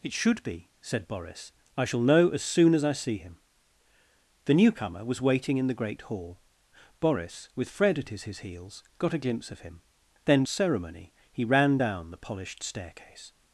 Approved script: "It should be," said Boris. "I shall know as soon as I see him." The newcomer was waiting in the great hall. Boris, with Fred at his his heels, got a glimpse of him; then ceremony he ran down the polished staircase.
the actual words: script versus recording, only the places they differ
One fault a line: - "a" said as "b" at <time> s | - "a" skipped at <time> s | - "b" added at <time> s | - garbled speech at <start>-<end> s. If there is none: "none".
none